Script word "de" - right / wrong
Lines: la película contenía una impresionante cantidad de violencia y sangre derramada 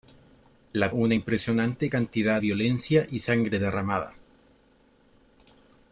wrong